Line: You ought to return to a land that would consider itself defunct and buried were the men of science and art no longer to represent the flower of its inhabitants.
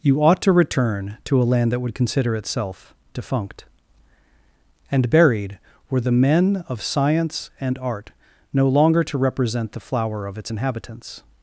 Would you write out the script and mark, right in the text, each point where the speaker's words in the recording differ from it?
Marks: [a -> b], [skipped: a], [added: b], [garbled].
You ought to return to a land that would consider itself defunct and buried were the men of science and art no longer to represent the flower of its inhabitants.